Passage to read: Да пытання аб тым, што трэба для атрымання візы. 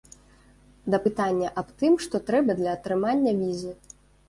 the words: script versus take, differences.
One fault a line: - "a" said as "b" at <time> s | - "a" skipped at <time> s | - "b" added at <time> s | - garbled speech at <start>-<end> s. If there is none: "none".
none